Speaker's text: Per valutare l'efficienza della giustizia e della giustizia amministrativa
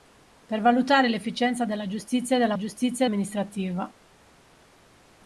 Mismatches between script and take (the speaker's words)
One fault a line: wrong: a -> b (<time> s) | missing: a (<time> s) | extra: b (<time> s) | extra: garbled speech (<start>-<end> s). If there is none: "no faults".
no faults